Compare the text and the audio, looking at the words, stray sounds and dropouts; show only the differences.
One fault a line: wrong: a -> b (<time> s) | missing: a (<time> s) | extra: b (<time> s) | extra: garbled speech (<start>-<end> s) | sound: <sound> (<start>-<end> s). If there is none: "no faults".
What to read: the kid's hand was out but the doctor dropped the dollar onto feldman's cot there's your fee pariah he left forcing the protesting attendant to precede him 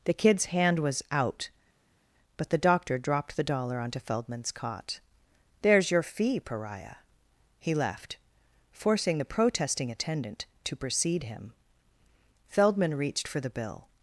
extra: feldman reached for the bill (12.5 s)